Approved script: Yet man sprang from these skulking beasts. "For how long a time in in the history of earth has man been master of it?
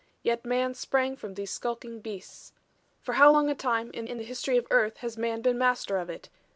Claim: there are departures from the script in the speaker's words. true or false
false